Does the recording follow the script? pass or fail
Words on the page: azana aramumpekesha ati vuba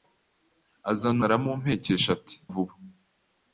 pass